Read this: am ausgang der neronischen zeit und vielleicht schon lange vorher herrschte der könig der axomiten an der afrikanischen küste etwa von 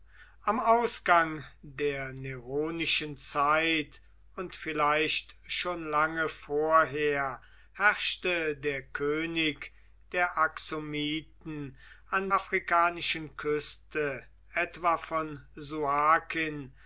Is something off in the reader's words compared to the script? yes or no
yes